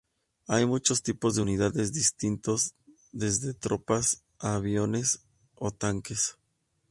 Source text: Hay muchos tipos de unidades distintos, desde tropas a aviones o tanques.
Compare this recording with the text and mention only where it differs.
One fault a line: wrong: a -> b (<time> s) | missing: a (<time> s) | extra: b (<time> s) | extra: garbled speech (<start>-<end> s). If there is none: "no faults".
no faults